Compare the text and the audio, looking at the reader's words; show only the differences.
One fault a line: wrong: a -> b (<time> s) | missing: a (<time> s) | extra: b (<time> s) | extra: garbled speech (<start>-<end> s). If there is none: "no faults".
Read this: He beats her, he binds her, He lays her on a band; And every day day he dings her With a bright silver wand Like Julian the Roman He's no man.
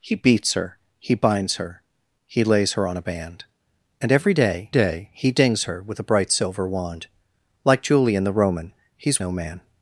no faults